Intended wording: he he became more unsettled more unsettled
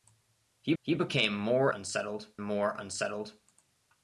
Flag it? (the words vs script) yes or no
no